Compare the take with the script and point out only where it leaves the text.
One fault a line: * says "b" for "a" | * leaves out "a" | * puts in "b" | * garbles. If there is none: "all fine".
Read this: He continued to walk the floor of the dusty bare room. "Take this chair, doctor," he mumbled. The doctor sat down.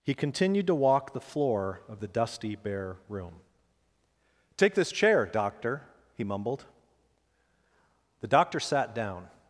all fine